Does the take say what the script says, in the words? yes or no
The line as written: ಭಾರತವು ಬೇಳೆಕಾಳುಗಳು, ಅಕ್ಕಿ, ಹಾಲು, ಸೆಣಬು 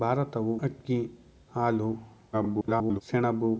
no